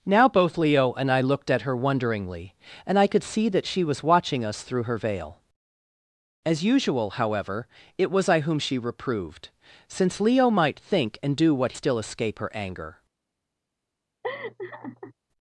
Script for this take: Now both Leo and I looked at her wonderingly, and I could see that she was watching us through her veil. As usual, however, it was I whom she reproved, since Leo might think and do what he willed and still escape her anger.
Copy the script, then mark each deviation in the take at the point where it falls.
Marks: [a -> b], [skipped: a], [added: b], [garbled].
Now both Leo and I looked at her wonderingly, and I could see that she was watching us through her veil. As usual, however, it was I whom she reproved, since Leo might think and do what [skipped: he willed and] still escape her anger.